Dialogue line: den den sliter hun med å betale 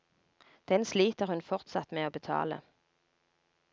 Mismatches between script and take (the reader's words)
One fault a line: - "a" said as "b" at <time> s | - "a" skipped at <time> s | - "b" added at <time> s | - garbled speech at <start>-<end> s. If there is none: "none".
- "den" skipped at 0.8 s
- "fortsatt" added at 1.4 s